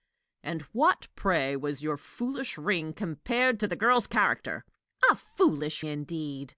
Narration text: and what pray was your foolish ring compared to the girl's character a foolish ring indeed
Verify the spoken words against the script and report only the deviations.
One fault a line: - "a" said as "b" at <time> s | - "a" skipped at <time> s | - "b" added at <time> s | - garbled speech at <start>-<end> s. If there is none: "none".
- "ring" skipped at 5.8 s